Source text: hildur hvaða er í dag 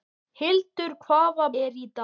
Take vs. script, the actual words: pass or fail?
pass